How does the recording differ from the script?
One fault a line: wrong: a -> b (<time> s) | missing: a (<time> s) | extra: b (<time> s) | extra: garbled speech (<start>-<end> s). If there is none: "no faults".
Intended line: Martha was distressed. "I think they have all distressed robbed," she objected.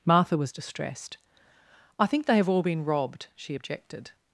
wrong: distressed -> been (2.6 s)